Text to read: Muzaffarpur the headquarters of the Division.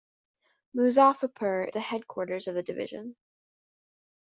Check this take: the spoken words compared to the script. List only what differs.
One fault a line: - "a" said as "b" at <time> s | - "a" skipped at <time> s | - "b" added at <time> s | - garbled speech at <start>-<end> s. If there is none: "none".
none